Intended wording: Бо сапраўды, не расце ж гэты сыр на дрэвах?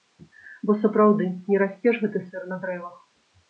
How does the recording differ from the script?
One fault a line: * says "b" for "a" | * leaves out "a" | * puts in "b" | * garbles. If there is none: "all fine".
all fine